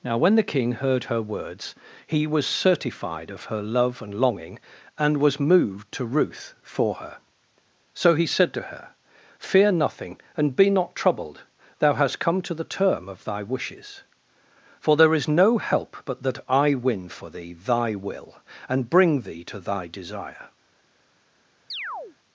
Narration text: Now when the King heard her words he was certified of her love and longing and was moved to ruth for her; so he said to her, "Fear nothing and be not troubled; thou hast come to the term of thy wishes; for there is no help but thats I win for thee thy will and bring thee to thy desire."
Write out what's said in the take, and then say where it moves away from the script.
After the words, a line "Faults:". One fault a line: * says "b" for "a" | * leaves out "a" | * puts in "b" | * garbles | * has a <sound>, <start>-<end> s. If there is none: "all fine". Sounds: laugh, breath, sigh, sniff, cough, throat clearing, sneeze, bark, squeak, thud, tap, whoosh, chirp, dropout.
Now when the King heard her words he was certified of her love and longing and was moved to ruth for her; so he said to her, "Fear nothing and be not troubled; thou hast come to the term of thy wishes; for there is no help but that I win for thee thy will and bring thee to thy desire."
Faults:
* says "that" for "thats"
* has a chirp, 21.7-22.2 s